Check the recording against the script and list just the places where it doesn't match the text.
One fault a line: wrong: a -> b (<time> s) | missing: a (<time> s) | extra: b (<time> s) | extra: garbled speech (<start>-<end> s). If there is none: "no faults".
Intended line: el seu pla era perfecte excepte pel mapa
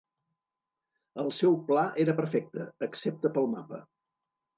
no faults